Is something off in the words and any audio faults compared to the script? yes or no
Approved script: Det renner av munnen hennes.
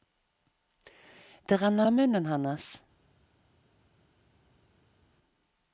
no